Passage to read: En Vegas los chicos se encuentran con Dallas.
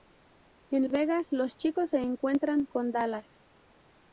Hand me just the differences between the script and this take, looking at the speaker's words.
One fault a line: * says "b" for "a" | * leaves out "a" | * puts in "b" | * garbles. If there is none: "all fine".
all fine